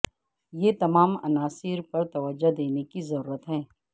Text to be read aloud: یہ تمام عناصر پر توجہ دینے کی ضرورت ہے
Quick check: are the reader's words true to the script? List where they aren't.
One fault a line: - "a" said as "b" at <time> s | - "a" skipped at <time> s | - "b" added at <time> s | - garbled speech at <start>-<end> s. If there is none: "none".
none